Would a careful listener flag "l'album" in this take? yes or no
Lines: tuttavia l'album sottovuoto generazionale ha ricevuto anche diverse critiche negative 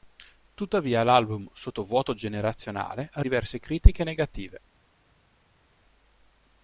no